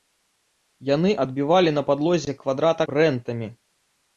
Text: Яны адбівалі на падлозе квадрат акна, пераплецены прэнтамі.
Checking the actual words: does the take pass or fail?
fail